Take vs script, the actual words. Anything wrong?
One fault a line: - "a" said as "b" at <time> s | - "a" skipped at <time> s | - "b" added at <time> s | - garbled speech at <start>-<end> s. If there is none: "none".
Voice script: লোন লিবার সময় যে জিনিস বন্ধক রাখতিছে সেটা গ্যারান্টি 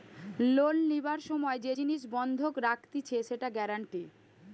none